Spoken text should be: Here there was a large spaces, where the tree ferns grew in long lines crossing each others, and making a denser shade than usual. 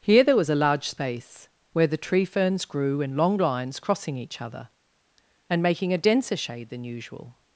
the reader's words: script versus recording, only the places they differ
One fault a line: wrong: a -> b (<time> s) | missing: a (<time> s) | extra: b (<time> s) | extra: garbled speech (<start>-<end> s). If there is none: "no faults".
wrong: spaces -> space (0.9 s)
wrong: others -> other (4.4 s)